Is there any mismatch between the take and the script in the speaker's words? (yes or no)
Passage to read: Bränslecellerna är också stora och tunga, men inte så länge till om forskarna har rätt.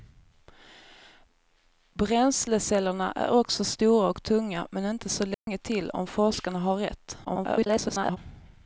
yes